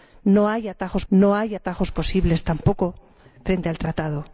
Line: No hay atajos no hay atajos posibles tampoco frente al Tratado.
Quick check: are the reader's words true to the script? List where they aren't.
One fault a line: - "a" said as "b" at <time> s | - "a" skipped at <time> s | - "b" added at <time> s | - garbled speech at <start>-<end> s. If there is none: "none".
none